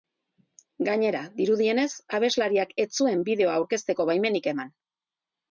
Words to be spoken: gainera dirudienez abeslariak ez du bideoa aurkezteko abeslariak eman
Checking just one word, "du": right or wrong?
wrong